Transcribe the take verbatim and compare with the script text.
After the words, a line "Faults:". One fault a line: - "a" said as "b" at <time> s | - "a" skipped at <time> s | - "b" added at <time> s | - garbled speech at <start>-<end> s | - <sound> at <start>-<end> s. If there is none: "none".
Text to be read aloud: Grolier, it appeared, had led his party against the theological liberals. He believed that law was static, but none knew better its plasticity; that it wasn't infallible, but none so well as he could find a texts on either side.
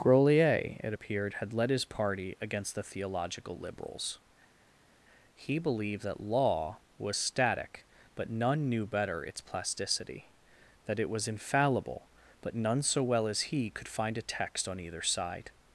Grolier, it appeared, had led his party against the theological liberals. He believed that law was static, but none knew better its plasticity; that it was infallible, but none so well as he could find a text on either side.
Faults:
- "wasn't" said as "was" at 11.1 s
- "texts" said as "text" at 14.2 s